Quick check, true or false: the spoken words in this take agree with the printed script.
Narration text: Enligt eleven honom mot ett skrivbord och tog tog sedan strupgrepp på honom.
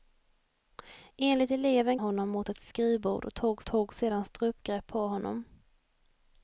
true